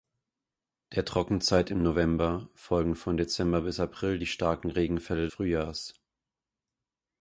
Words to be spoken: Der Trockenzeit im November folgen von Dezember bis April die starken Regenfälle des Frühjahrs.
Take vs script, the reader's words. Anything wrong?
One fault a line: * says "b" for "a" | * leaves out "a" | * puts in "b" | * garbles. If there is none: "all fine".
* leaves out "des"